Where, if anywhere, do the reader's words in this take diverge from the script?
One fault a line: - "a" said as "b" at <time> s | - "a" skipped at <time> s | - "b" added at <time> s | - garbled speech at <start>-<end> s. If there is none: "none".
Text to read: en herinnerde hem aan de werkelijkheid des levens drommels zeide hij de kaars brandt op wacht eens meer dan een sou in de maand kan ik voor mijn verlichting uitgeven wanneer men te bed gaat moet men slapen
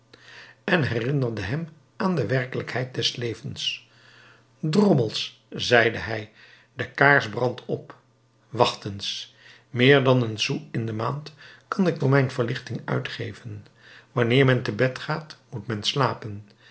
none